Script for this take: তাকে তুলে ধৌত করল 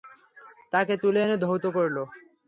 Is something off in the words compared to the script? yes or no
yes